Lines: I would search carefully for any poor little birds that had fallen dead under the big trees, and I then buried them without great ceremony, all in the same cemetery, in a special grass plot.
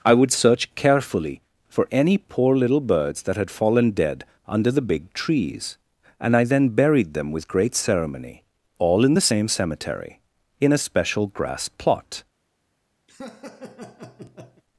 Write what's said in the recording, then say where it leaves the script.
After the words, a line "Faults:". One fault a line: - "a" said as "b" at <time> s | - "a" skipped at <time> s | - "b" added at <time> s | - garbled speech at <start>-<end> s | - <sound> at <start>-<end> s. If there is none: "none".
I would search carefully for any poor little birds that had fallen dead under the big trees, and I then buried them with great ceremony, all in the same cemetery, in a special grass plot.
Faults:
- "without" said as "with" at 7.3 s
- laugh at 13.1-14.6 s